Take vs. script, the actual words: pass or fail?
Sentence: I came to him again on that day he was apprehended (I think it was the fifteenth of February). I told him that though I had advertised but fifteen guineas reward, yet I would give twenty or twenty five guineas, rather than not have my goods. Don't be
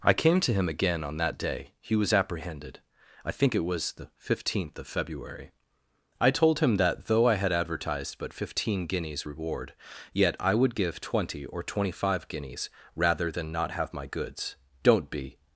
pass